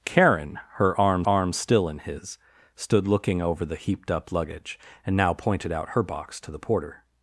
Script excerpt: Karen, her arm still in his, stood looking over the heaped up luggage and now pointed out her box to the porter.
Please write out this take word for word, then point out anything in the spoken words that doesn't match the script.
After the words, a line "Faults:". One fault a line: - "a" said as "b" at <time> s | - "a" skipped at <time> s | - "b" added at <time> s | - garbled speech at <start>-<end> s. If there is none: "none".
Karen, her arm arm still in his, stood looking over the heaped up luggage and now pointed out her box to the porter.
Faults:
- "arm" added at 1.3 s